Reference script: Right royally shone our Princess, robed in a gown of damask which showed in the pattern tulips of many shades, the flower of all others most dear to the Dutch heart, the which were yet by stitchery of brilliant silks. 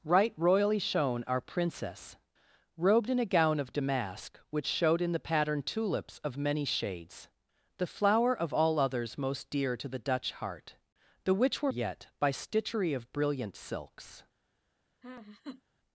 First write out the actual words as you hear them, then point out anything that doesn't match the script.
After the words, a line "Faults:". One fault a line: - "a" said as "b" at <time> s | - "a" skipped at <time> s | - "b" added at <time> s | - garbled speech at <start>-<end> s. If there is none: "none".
Right royally shone our Princess, robed in a gown of damask which showed in the pattern tulips of many shades, the flower of all others most dear to the Dutch heart, the which were yet by stitchery of brilliant silks.
Faults:
none